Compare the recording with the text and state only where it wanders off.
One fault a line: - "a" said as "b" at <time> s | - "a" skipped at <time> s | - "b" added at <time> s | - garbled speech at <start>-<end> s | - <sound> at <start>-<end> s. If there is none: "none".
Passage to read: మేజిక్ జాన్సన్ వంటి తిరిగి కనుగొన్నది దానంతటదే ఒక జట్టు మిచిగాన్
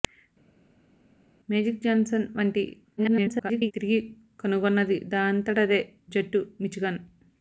- garbled speech at 3.0-3.7 s
- "ఒక" skipped at 5.8 s